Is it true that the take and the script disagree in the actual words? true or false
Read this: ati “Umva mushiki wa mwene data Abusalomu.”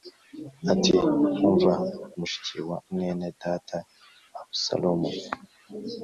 false